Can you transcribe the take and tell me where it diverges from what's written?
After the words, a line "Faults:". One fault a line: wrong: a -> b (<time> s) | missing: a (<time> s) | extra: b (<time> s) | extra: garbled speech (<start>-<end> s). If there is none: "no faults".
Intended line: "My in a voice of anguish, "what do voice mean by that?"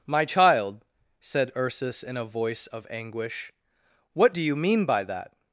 "My child," said Ursus in a voice of anguish, "what do you mean by that?"
Faults:
extra: child said Ursus (0.2 s)
wrong: voice -> you (4.4 s)